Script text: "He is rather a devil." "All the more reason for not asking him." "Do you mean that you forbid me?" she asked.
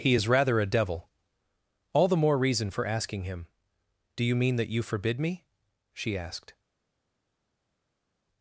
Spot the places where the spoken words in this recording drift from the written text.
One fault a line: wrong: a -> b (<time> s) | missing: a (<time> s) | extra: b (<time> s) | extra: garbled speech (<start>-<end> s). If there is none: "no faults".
missing: not (2.9 s)